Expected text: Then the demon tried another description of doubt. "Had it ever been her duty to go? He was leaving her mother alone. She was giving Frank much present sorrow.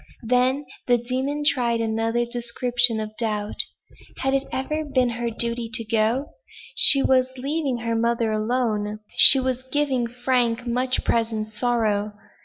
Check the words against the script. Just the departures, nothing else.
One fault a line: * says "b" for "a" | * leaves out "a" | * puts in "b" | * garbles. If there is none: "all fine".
* says "She" for "He"